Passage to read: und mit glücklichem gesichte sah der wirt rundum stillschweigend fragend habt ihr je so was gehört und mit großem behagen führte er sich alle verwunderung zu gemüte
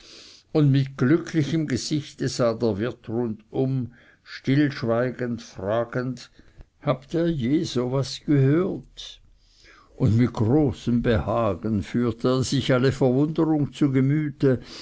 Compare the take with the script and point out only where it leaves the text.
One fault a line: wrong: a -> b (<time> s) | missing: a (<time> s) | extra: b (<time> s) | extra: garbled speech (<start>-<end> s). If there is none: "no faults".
no faults